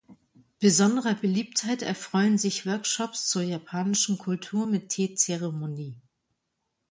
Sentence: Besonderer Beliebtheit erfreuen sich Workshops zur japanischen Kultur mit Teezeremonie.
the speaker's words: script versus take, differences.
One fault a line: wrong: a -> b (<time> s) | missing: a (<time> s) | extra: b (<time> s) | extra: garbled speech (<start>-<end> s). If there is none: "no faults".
no faults